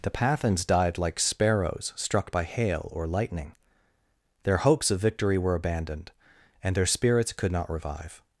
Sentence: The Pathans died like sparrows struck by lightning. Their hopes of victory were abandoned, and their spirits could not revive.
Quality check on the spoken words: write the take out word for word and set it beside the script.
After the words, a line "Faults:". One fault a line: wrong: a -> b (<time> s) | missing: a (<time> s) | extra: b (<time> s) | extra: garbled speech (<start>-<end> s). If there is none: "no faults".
The Pathans died like sparrows struck by hail or lightning. Their hopes of victory were abandoned, and their spirits could not revive.
Faults:
extra: hail or (2.4 s)